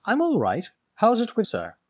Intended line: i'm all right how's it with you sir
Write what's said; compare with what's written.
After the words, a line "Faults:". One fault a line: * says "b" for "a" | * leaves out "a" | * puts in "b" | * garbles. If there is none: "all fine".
i'm all right how's it with sir
Faults:
* leaves out "you"